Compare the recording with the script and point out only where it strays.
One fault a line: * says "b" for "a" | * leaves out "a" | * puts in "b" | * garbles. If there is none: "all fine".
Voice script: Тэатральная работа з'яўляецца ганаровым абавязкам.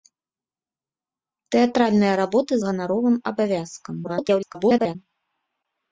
* leaves out "з'яўляецца"
* garbles